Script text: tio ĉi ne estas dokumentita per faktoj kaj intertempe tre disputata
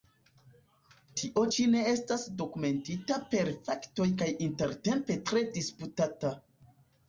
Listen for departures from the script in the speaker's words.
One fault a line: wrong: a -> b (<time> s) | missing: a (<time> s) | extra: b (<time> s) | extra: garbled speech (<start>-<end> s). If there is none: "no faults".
no faults